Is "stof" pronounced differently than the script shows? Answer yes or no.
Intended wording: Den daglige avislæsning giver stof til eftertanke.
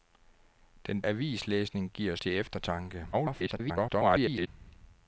yes